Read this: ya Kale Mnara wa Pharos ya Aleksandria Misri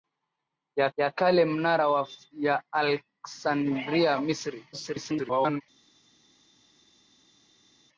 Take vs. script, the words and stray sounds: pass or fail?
fail